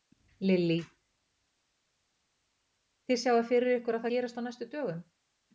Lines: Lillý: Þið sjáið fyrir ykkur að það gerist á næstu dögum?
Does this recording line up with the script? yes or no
no